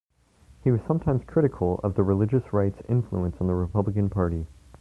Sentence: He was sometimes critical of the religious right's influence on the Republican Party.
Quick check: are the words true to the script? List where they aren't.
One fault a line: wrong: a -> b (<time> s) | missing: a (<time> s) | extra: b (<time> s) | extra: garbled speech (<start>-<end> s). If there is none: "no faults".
no faults